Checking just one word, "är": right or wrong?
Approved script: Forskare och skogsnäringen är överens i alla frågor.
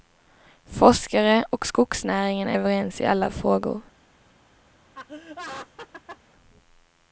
right